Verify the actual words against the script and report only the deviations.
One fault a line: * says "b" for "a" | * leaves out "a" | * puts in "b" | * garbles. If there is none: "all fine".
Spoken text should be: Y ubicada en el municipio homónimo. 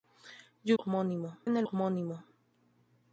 * says "homónimo" for "ubicada"
* leaves out "municipio"